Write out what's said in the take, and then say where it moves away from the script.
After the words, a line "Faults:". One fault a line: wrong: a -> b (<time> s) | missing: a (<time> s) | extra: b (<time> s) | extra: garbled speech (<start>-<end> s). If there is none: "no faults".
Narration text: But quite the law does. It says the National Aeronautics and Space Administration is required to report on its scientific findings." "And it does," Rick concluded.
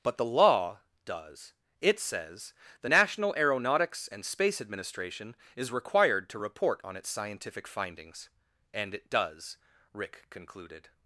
But the law does. It says the National Aeronautics and Space Administration is required to report on its scientific findings." "And it does," Rick concluded.
Faults:
missing: quite (0.2 s)